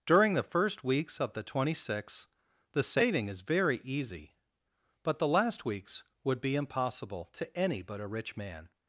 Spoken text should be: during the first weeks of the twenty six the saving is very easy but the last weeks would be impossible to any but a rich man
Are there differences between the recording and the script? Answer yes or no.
no